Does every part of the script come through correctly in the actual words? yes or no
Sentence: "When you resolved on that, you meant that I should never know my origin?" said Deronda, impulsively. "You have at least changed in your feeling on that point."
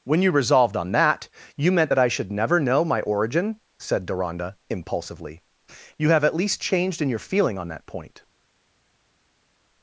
yes